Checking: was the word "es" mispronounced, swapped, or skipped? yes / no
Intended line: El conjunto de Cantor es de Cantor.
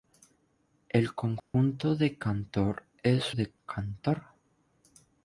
no